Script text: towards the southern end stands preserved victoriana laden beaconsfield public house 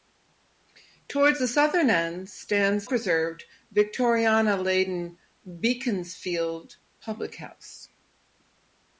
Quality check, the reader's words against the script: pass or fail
pass